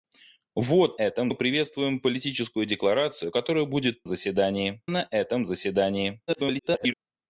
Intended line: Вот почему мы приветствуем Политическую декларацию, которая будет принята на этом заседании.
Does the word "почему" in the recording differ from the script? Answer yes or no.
yes